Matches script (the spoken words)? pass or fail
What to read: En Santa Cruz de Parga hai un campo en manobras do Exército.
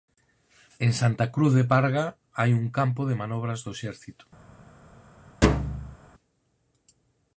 fail